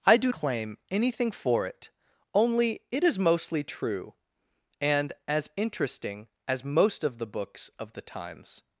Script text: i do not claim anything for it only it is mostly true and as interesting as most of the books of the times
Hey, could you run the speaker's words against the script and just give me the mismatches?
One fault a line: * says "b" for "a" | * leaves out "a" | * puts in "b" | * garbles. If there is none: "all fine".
* leaves out "not"